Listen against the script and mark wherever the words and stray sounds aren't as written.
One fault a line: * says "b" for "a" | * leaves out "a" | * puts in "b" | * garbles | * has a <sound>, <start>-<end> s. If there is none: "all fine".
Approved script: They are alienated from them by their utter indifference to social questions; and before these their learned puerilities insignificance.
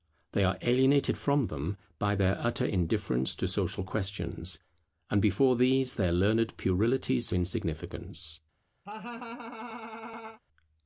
* has a laugh, 8.9-10.4 s